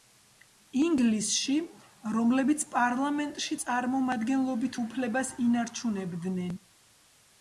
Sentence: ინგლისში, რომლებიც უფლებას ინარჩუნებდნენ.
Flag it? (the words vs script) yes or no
yes